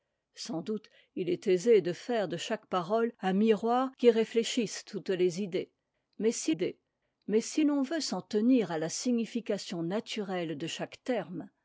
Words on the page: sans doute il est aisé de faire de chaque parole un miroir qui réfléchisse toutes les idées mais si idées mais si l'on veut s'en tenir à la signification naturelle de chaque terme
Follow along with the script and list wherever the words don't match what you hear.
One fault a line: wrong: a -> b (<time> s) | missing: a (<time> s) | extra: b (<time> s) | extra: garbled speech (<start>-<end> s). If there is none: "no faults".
no faults